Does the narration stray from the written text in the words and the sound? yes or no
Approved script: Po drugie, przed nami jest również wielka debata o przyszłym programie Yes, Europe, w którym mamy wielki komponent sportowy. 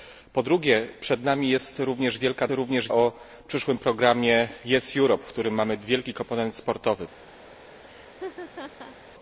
yes